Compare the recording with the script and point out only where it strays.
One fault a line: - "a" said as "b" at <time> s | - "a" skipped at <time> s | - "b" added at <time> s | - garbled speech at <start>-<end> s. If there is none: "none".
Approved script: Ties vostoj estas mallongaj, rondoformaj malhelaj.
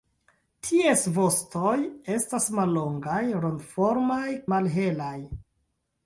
none